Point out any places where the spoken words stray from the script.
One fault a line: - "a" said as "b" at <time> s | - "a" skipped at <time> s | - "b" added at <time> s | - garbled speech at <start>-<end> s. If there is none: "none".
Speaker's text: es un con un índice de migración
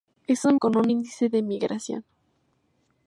none